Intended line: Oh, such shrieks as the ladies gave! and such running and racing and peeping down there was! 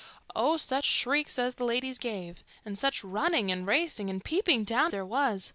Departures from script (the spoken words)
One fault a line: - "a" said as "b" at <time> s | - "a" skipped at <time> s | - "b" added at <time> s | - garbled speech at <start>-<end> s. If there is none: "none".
none